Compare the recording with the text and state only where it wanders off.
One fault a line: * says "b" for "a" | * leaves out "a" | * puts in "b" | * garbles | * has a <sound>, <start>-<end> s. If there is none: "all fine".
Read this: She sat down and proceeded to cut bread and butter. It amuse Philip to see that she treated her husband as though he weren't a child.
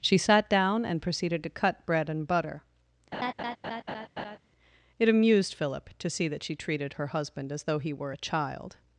* has a laugh, 3.1-4.4 s
* says "amused" for "amuse"
* says "were" for "weren't"